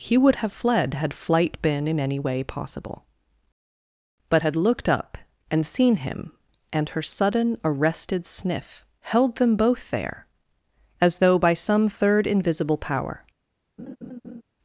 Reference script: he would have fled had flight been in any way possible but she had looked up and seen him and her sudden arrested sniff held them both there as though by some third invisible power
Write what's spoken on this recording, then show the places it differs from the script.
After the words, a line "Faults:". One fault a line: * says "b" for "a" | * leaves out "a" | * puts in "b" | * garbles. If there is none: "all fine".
he would have fled had flight been in any way possible but had looked up and seen him and her sudden arrested sniff held them both there as though by some third invisible power
Faults:
* leaves out "she"